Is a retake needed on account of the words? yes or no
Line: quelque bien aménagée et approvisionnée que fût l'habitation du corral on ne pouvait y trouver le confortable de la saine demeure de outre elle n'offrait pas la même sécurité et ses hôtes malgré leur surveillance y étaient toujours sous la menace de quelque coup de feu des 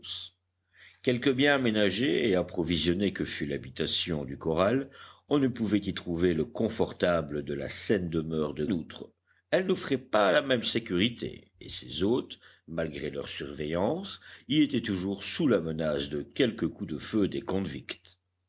no